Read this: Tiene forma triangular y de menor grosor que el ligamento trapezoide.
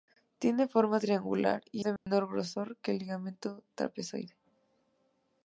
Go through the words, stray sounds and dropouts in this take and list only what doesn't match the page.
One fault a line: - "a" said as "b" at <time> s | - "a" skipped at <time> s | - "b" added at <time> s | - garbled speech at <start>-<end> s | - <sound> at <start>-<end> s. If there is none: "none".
- dropout at 2.0-2.1 s